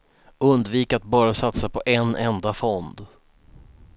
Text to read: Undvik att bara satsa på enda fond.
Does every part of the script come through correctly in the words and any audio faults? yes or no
no